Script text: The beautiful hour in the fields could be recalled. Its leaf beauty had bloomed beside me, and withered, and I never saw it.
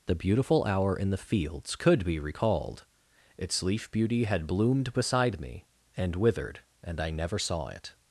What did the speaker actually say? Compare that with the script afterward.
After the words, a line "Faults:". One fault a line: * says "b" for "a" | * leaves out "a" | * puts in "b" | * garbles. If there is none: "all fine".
The beautiful hour in the fields could be recalled. Its leaf beauty had bloomed beside me, and withered, and I never saw it.
Faults:
all fine